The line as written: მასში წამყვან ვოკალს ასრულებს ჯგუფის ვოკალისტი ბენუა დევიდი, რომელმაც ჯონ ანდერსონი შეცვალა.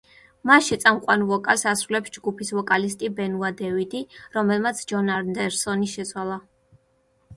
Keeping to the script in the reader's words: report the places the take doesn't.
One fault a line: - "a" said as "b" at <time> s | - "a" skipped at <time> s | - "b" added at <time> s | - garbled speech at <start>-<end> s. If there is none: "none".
none